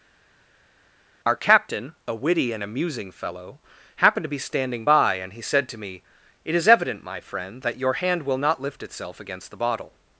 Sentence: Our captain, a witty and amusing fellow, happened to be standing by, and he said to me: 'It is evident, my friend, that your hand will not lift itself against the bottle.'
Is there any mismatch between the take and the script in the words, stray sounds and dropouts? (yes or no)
no